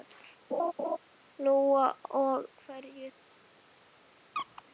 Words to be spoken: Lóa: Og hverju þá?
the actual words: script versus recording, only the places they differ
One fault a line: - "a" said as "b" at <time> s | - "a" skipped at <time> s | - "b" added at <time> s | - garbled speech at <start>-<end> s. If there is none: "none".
none